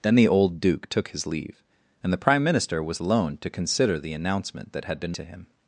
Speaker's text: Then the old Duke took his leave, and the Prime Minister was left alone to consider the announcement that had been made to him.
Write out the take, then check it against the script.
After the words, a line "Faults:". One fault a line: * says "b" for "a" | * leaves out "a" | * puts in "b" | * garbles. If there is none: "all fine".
Then the old Duke took his leave, and the Prime Minister was alone to consider the announcement that had been to him.
Faults:
* leaves out "left"
* leaves out "made"